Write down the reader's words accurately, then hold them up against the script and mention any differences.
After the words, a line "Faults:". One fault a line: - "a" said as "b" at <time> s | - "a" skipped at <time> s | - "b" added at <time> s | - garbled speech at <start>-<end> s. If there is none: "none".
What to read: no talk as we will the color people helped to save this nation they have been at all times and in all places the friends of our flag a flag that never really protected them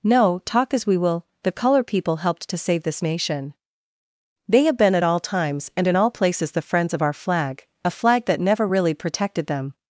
no talk as we will the color people helped to save this nation they have been at all times and in all places the friends of our flag a flag that never really protected them
Faults:
none